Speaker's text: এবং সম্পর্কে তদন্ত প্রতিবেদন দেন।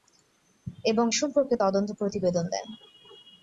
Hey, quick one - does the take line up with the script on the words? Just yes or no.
yes